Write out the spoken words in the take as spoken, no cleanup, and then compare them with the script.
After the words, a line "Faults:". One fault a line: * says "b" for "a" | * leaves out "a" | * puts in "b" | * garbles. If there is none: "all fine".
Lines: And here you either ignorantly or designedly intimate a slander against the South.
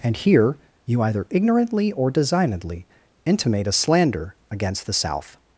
And here you either ignorantly or designedly intimate a slander against the South.
Faults:
all fine